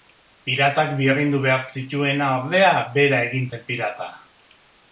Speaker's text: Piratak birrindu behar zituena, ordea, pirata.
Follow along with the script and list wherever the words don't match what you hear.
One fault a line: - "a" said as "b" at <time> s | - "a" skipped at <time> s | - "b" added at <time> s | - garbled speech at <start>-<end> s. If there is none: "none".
- "bera egin zen" added at 3.0 s